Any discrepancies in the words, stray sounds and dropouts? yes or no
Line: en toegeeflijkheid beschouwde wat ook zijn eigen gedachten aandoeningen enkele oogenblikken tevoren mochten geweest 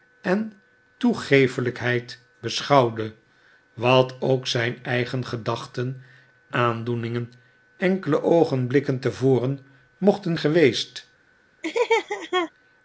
yes